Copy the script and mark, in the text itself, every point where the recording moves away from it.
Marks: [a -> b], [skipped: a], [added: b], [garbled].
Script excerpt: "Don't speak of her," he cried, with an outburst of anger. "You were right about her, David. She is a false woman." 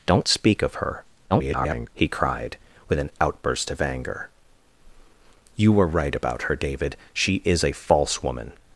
"Don't speak of her," [garbled] he cried, with an outburst of anger. "You were right about her, David. She is a false woman."